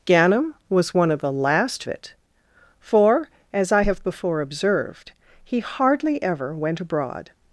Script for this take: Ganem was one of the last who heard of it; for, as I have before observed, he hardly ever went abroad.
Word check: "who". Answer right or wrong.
wrong